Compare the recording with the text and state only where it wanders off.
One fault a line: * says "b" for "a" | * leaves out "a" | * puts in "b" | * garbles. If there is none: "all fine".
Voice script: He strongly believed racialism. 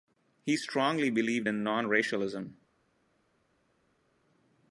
* puts in "in non"